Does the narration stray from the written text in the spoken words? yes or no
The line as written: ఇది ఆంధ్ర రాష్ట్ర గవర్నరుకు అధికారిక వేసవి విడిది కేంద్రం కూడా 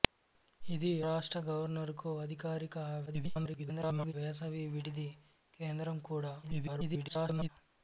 yes